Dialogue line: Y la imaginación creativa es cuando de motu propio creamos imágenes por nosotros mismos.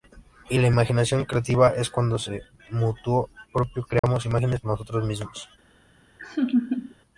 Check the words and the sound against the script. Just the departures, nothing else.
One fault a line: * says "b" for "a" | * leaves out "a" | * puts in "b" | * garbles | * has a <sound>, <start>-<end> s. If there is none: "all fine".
* has a dropout, 4.0-4.0 s
* leaves out "por"
* has a laugh, 6.2-6.9 s